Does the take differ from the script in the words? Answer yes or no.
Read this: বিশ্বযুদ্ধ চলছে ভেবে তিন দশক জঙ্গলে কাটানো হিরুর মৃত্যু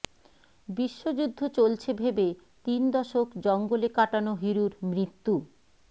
no